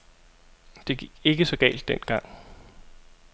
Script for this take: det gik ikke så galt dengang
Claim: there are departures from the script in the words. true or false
false